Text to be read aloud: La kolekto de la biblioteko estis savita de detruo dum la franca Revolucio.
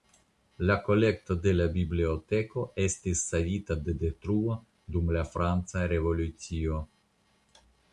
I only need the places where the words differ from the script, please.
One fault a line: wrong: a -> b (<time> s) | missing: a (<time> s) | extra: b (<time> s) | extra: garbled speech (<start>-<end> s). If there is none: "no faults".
no faults